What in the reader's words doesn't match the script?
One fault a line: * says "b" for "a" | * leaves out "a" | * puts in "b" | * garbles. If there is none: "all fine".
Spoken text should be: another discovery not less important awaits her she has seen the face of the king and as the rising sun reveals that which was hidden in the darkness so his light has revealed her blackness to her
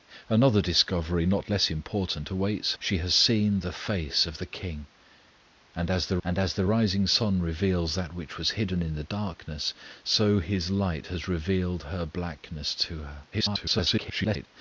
* leaves out "her"
* puts in "and as the"
* garbles